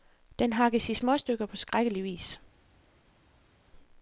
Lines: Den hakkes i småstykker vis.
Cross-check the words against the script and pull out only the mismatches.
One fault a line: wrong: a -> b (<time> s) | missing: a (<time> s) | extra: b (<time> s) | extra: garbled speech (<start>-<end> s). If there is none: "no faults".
extra: på skrækkelig (1.4 s)